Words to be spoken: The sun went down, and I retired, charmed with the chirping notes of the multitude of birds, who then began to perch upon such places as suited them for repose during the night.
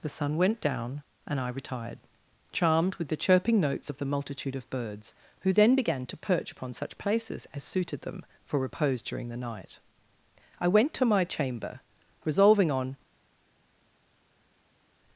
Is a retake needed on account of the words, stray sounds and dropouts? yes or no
yes